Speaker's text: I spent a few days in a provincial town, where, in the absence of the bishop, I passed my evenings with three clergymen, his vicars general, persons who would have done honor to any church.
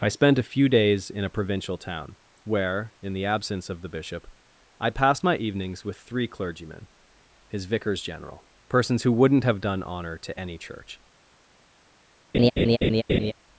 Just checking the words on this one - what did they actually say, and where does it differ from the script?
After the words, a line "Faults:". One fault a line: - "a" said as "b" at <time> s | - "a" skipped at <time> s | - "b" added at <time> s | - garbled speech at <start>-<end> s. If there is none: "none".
I spent a few days in a provincial town, where, in the absence of the bishop, I passed my evenings with three clergymen, his vicars general, persons who wouldn't have done honor to any church.
Faults:
- "would" said as "wouldn't" at 9.1 s